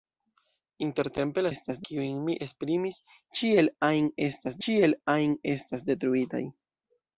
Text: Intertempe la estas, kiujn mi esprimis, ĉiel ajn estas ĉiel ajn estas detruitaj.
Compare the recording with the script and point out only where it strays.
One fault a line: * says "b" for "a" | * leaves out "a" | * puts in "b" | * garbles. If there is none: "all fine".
all fine